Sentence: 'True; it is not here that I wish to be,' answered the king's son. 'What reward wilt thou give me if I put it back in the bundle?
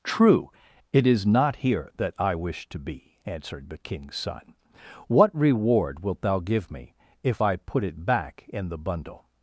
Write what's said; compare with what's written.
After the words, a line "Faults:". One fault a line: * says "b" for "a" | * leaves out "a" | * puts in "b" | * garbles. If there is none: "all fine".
'True; it is not here that I wish to be,' answered the king's son. 'What reward wilt thou give me if I put it back in the bundle?
Faults:
all fine